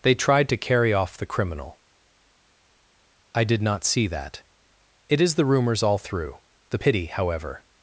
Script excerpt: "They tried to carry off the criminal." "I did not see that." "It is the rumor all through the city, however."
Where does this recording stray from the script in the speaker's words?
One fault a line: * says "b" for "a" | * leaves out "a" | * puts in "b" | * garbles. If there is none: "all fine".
* says "rumors" for "rumor"
* says "pity" for "city"